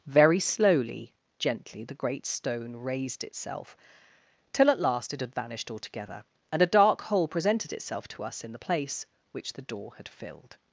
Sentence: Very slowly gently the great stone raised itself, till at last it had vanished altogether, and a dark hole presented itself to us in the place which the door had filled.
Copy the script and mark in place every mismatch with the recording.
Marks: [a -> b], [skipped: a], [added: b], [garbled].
Very slowly gently the great stone raised itself, till at last it had vanished altogether, and a dark hole presented itself to us in the place which the door had filled.